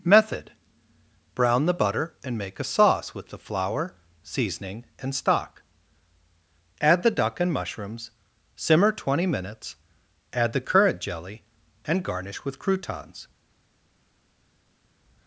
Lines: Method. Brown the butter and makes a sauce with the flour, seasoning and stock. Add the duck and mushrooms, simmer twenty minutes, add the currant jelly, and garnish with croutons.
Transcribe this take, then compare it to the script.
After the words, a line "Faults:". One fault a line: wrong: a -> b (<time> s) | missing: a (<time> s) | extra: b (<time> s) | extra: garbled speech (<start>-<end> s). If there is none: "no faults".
Method. Brown the butter and make a sauce with the flour, seasoning and stock. Add the duck and mushrooms, simmer twenty minutes, add the currant jelly, and garnish with croutons.
Faults:
wrong: makes -> make (2.4 s)